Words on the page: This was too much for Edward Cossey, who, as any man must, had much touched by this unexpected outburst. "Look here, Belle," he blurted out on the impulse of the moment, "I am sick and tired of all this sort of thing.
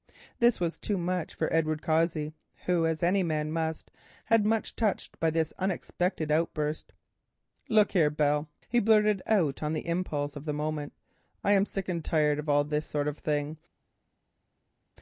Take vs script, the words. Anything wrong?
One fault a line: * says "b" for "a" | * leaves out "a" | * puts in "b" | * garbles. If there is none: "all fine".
all fine